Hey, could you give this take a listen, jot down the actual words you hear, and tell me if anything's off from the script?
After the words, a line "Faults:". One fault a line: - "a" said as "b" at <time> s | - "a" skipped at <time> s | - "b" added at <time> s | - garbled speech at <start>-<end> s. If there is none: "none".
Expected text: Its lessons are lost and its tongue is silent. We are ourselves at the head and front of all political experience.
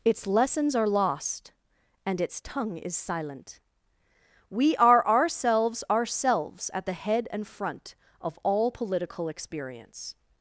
Its lessons are lost and its tongue is silent. We are ourselves ourselves at the head and front of all political experience.
Faults:
- "ourselves" added at 5.9 s